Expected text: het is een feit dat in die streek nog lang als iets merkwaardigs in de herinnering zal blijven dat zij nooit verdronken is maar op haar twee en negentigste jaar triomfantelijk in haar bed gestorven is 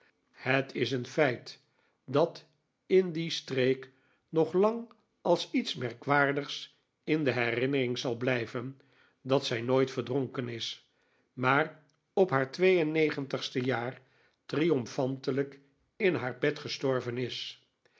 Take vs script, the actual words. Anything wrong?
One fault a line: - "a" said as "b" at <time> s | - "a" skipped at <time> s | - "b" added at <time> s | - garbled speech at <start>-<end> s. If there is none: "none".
none